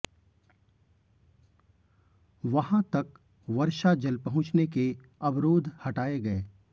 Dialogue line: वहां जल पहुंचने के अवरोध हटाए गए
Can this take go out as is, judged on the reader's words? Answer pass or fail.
fail